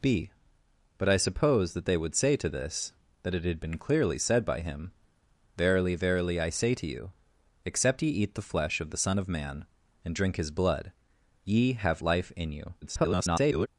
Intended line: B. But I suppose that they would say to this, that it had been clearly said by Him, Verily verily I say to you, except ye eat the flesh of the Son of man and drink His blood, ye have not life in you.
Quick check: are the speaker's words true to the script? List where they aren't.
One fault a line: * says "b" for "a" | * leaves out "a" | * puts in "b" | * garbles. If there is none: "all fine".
* leaves out "not"
* garbles